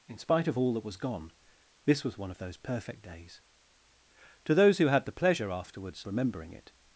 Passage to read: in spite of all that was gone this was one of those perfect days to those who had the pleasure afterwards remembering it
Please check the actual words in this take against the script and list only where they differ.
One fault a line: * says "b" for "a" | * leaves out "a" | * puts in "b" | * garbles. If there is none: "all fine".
all fine